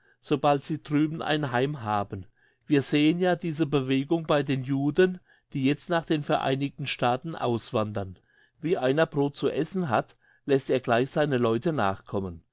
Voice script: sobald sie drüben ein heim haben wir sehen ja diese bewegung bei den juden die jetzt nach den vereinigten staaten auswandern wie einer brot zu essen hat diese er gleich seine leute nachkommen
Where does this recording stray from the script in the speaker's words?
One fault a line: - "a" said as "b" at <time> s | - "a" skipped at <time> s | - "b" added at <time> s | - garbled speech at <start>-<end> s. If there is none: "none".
- "diese" said as "lässt" at 10.5 s